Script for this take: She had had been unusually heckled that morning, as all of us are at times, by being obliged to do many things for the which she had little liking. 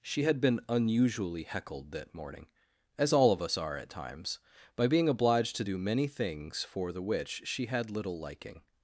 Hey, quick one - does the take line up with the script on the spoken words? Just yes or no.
no